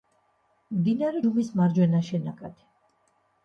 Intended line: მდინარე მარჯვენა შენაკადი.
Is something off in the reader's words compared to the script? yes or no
yes